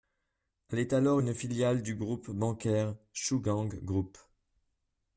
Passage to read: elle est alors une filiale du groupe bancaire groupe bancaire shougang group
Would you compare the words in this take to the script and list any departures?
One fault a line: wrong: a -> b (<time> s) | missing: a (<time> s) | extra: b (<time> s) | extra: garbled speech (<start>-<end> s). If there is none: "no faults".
missing: groupe bancaire (3.0 s)